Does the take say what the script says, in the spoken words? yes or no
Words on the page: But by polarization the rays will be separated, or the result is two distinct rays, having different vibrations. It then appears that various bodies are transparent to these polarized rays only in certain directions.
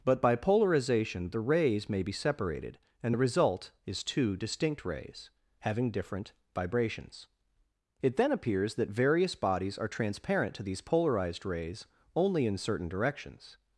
no